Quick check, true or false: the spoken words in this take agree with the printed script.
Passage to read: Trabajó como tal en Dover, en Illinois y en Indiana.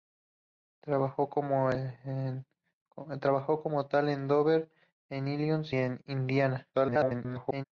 false